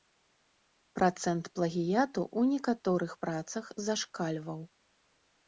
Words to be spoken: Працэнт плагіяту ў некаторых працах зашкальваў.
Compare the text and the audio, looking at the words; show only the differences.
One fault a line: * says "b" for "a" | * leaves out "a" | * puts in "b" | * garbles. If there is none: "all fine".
all fine